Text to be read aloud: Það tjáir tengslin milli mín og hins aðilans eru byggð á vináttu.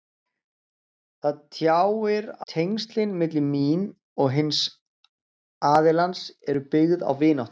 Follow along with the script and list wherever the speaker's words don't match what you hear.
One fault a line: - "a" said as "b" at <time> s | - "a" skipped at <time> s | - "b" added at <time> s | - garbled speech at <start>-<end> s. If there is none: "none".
none